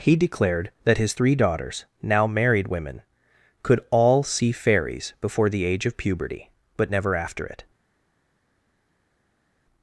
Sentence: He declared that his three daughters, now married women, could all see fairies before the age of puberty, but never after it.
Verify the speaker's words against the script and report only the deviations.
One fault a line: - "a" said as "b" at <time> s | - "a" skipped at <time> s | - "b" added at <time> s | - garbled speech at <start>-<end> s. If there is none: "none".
none